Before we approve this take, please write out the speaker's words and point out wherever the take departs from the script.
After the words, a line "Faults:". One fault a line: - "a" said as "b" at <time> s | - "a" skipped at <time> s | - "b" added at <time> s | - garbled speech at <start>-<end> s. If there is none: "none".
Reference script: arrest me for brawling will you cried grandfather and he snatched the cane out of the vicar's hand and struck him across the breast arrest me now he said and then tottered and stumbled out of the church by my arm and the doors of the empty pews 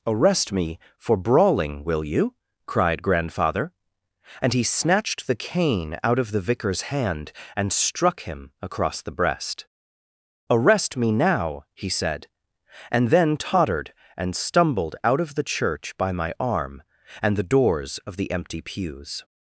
arrest me for brawling will you cried grandfather and he snatched the cane out of the vicar's hand and struck him across the breast arrest me now he said and then tottered and stumbled out of the church by my arm and the doors of the empty pews
Faults:
none